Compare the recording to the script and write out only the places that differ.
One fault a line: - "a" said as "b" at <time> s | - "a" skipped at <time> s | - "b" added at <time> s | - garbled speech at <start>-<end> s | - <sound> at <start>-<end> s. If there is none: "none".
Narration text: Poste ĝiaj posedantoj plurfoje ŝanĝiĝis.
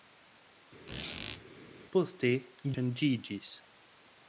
- squeak at 0.9-1.4 s
- "ĝiaj posedantoj plurfoje" skipped at 2.3 s